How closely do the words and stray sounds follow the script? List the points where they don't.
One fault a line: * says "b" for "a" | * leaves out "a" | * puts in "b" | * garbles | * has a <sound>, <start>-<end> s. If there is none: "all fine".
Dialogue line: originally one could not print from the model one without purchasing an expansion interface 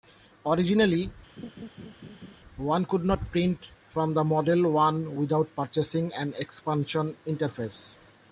* has a laugh, 1.4-2.4 s